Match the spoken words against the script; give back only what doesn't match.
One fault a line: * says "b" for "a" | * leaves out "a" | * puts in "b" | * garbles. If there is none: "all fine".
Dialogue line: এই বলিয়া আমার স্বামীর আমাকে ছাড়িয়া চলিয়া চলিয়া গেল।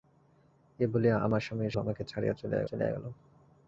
all fine